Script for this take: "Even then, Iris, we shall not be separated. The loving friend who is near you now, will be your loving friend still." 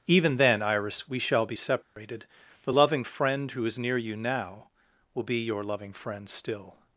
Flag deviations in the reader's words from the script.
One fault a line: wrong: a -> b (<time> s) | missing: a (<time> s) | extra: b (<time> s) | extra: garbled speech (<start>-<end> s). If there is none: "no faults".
missing: not (1.4 s)